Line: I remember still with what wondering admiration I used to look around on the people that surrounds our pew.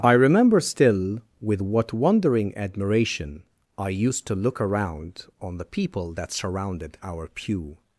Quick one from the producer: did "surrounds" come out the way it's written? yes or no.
no